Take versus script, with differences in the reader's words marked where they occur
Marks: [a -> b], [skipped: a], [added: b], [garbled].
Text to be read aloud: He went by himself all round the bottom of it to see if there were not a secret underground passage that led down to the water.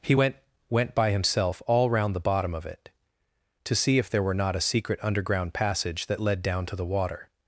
He went [added: went] by himself all round the bottom of it to see if there were not a secret underground passage that led down to the water.